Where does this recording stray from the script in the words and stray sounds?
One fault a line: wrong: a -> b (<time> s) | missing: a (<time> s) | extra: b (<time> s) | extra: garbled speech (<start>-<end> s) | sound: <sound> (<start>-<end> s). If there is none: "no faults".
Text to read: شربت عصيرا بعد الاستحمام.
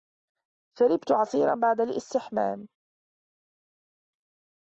no faults